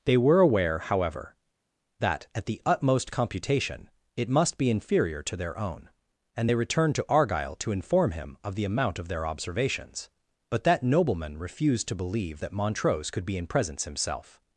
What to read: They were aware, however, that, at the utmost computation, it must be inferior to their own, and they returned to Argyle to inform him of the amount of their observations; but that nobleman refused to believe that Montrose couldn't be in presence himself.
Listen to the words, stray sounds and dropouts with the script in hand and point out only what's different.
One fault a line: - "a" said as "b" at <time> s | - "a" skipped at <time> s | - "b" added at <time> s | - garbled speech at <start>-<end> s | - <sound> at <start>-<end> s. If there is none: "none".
- "couldn't" said as "could" at 13.1 s